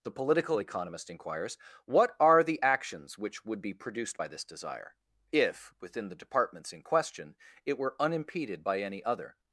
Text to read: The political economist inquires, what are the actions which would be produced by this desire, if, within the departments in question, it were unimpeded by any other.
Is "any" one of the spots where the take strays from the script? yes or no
no